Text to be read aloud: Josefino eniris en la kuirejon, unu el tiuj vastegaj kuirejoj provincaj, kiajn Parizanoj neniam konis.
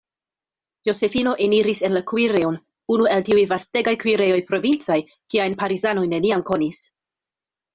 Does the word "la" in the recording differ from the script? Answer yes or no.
no